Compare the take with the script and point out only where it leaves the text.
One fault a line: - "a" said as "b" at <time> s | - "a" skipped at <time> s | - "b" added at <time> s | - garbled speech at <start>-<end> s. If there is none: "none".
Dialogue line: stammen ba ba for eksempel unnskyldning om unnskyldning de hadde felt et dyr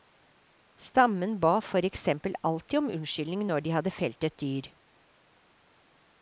- "ba" skipped at 1.6 s
- "unnskyldning" said as "alltid" at 2.4 s
- "når" added at 3.5 s